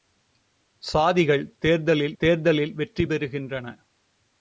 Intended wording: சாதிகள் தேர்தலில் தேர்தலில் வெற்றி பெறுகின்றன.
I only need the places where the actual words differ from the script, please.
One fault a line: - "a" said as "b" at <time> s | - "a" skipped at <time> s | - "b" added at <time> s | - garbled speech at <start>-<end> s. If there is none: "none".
none